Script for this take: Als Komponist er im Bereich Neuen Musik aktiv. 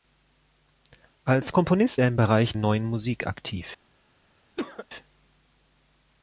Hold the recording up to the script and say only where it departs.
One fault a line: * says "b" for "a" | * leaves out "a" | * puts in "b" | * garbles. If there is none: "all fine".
all fine